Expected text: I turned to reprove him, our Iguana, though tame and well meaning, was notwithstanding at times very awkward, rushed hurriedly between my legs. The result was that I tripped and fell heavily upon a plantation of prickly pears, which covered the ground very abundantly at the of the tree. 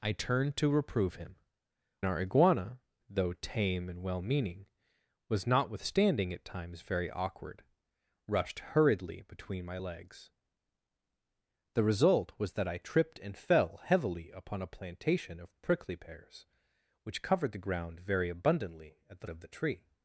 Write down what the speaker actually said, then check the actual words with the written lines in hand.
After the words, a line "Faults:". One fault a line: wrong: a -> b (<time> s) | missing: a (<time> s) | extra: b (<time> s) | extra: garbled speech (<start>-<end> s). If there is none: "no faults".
I turned to reprove him, our Iguana, though tame and well meaning, was notwithstanding at times very awkward, rushed hurriedly between my legs. The result was that I tripped and fell heavily upon a plantation of prickly pears, which covered the ground very abundantly at the of the tree.
Faults:
no faults